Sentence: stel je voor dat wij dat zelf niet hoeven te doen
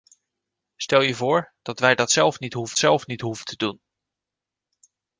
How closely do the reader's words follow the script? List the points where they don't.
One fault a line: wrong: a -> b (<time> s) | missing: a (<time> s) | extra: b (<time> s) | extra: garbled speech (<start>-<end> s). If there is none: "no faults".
extra: zelf niet hoeven (2.8 s)